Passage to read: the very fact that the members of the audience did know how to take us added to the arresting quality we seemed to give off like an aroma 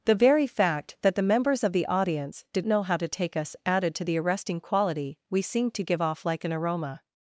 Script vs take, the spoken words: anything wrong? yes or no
no